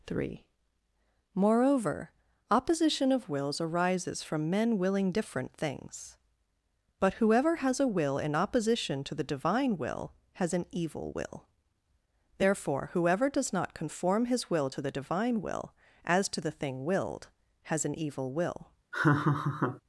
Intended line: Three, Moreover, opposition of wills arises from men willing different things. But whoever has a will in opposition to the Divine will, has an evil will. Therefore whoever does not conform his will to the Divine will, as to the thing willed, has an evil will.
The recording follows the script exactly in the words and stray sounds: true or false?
false